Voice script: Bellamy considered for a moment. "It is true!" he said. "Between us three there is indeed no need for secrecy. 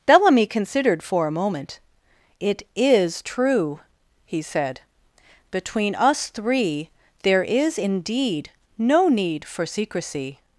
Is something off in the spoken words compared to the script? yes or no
no